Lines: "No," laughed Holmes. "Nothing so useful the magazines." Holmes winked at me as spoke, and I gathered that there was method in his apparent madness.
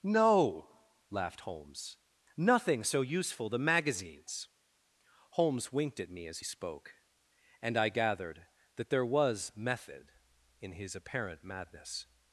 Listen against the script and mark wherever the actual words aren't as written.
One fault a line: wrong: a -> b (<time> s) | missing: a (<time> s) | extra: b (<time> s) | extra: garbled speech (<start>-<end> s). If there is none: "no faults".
no faults